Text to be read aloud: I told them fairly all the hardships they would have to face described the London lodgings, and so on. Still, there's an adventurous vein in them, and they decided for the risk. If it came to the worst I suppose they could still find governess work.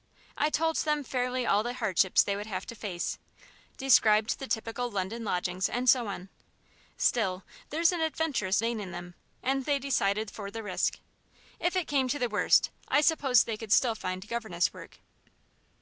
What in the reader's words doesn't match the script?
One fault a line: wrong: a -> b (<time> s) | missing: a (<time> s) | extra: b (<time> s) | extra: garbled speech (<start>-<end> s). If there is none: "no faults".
extra: typical (4.5 s)